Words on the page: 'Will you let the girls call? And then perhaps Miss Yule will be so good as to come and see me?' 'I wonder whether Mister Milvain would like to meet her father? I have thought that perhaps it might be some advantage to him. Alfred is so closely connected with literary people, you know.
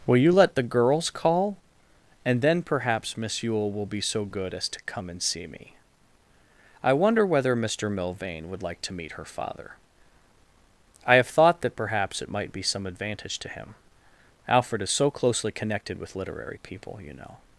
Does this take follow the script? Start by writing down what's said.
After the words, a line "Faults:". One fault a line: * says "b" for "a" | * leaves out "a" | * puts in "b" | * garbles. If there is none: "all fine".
'Will you let the girls call? And then perhaps Miss Yule will be so good as to come and see me?' 'I wonder whether Mister Milvain would like to meet her father? I have thought that perhaps it might be some advantage to him. Alfred is so closely connected with literary people, you know.
Faults:
all fine